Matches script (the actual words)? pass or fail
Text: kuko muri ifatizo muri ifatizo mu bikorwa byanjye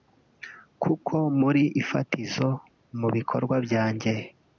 fail